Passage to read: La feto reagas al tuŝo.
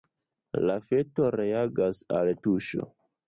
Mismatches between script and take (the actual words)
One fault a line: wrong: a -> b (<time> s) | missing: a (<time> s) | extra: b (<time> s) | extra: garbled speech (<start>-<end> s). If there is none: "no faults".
no faults